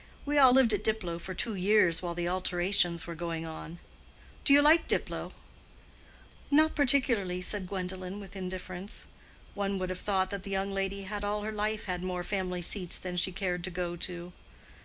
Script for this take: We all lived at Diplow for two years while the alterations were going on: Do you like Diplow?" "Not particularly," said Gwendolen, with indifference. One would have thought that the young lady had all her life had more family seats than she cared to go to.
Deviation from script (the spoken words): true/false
false